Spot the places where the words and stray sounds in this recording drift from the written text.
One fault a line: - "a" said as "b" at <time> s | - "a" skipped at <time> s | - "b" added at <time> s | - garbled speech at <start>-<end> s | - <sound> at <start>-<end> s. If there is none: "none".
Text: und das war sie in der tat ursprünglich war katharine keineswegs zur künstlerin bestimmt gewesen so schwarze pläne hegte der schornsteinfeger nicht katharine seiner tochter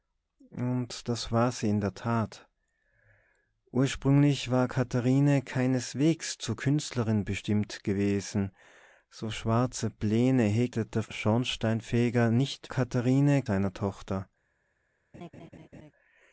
- laugh at 15.1-15.9 s